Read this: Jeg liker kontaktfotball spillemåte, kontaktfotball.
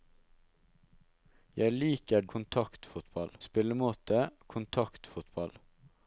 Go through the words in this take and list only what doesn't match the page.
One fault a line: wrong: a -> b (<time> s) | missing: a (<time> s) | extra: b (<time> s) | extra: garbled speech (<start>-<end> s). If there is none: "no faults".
no faults